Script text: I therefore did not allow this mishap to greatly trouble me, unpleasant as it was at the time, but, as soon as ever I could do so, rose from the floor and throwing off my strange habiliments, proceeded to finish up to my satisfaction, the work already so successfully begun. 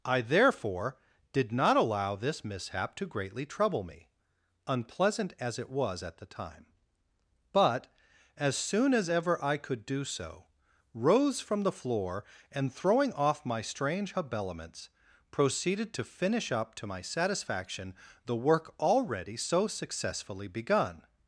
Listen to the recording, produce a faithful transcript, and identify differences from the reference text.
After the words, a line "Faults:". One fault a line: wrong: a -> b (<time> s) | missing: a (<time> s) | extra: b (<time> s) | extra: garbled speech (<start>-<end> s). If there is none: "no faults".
I therefore did not allow this mishap to greatly trouble me, unpleasant as it was at the time, but, as soon as ever I could do so, rose from the floor and throwing off my strange habiliments, proceeded to finish up to my satisfaction, the work already so successfully begun.
Faults:
no faults